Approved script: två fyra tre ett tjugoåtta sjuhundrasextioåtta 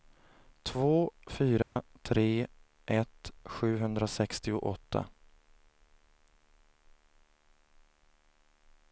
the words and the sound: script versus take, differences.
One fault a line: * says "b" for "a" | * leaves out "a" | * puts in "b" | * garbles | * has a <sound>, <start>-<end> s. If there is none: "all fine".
* has a dropout, 1.6-1.8 s
* leaves out "tjugoåtta"